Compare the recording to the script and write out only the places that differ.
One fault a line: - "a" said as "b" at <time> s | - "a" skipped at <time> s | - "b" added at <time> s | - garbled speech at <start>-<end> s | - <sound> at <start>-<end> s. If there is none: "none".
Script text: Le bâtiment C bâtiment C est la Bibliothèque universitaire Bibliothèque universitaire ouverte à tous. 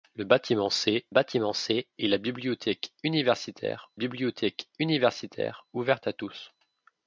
none